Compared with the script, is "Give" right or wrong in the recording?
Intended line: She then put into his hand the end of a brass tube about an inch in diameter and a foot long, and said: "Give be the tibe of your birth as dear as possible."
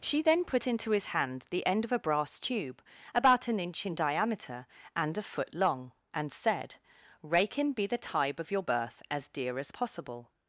wrong